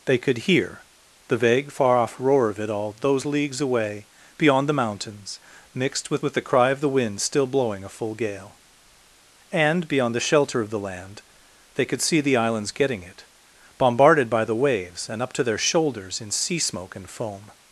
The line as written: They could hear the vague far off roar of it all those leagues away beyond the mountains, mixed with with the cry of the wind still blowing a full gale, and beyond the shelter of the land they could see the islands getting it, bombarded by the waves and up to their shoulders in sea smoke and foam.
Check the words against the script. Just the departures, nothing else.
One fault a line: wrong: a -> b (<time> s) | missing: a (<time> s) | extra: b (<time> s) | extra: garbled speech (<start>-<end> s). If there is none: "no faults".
no faults